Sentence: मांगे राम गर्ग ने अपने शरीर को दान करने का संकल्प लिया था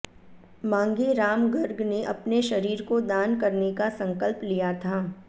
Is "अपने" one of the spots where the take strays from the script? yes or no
no